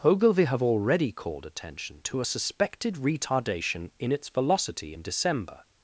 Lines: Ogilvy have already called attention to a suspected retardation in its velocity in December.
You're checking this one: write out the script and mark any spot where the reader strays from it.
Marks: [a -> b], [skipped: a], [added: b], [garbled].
Ogilvy have already called attention to a suspected retardation in its velocity in December.